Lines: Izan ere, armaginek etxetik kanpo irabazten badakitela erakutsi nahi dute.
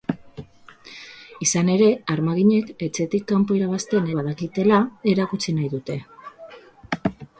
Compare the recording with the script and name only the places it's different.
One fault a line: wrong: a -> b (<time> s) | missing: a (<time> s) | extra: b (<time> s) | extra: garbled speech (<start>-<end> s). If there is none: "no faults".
no faults